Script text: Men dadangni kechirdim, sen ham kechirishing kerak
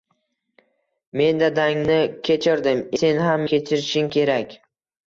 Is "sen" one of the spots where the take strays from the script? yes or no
no